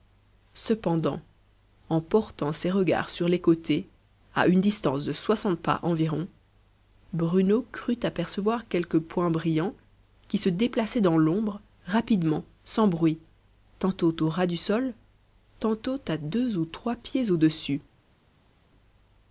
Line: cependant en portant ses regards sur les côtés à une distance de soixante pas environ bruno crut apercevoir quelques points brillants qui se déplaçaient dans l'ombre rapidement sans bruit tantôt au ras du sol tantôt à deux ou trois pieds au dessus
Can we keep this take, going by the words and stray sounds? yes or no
yes